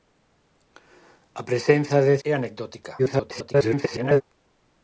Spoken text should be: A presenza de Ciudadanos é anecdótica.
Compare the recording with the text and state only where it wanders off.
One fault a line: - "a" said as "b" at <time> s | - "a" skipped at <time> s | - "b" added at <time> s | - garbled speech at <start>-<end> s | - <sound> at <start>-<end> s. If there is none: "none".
- "Ciudadanos" skipped at 2.1 s
- garbled speech at 3.0-4.2 s